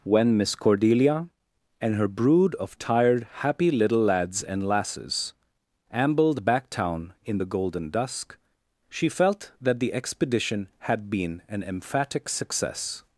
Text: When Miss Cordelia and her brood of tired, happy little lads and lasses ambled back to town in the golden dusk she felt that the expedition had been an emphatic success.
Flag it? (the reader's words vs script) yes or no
yes